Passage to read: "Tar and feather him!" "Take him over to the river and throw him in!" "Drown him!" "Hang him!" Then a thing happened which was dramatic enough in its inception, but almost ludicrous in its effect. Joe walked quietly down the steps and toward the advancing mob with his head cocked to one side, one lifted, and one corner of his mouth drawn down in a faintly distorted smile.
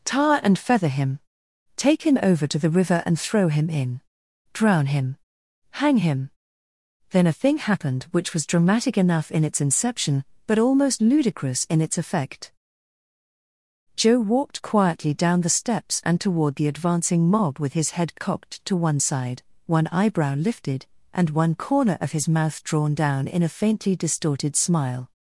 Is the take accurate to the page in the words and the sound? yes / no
no